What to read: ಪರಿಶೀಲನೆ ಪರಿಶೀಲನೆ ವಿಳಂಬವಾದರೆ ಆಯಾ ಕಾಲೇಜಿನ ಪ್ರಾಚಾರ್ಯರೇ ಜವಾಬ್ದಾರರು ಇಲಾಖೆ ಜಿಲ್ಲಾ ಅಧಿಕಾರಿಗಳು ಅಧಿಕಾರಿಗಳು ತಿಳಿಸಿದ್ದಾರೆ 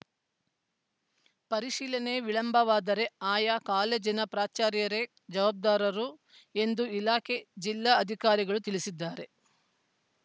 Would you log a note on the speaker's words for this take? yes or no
yes